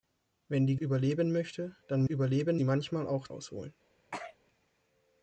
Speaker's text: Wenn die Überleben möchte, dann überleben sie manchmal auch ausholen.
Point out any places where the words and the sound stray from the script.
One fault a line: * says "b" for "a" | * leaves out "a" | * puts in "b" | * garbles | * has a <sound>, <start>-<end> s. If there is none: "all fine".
* has a sneeze, 4.1-4.4 s